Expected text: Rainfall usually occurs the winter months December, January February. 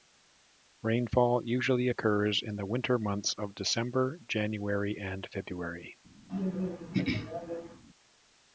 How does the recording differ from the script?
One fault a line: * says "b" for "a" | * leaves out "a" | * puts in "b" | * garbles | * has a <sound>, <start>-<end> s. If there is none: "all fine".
* puts in "in"
* puts in "of"
* puts in "and"
* has a throat clearing, 6.3-7.8 s